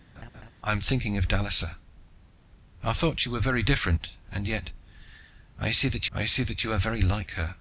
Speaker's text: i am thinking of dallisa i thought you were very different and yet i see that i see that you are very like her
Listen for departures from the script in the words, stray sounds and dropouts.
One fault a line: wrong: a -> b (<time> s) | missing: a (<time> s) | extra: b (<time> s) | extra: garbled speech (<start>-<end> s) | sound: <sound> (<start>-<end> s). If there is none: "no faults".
sound: laugh (0.2-0.5 s)